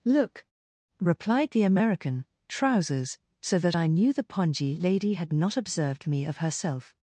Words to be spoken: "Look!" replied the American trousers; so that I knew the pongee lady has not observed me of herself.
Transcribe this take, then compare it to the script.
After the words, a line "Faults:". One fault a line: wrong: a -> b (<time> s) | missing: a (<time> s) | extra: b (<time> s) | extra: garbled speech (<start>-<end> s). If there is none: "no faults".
"Look!" replied the American trousers; so that I knew the pongee lady had not observed me of herself.
Faults:
wrong: has -> had (5.1 s)